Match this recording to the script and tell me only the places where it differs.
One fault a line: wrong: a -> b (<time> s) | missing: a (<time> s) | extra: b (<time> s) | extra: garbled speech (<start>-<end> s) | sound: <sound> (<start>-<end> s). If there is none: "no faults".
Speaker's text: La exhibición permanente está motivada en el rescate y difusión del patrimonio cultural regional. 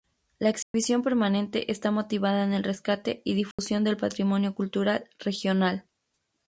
sound: dropout (0.6-0.7 s)
sound: dropout (3.5-3.6 s)